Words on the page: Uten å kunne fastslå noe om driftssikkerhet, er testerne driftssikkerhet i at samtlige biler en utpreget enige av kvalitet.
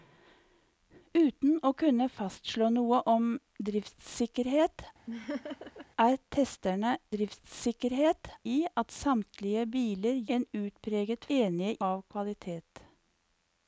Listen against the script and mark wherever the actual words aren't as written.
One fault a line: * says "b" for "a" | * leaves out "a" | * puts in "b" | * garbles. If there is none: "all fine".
all fine